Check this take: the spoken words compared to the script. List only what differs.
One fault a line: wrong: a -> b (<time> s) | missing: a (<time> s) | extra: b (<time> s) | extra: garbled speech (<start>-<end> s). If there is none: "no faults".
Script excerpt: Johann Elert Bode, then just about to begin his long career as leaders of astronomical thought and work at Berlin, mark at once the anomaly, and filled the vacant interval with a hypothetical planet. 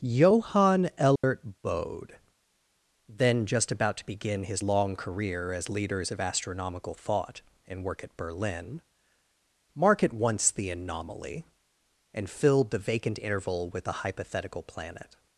no faults